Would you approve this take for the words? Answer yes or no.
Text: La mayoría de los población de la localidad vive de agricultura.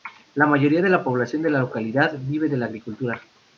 no